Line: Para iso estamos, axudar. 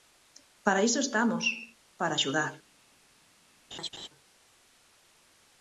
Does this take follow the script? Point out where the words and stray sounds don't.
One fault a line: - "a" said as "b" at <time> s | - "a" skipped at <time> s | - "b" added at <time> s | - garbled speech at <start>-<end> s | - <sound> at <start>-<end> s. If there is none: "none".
- "para" added at 2.0 s
- laugh at 3.7-4.1 s